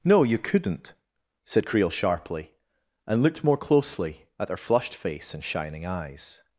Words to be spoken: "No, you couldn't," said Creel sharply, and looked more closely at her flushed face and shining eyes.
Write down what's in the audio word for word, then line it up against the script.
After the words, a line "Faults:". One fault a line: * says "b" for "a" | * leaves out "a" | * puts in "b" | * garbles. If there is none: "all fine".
"No, you couldn't," said Creel sharply, and looked more closely at her flushed face and shining eyes.
Faults:
all fine